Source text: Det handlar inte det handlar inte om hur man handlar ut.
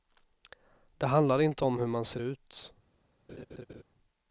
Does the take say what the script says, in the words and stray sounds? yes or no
no